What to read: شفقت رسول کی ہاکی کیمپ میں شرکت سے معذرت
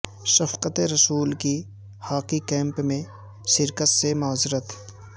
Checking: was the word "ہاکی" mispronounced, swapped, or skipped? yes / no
no